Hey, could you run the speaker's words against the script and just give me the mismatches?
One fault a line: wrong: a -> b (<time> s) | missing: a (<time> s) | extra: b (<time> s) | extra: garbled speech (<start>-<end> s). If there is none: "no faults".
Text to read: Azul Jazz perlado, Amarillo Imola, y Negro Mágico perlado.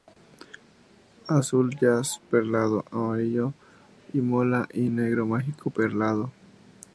no faults